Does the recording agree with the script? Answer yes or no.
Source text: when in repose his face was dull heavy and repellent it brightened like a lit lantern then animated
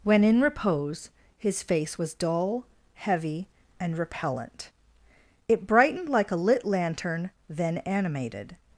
yes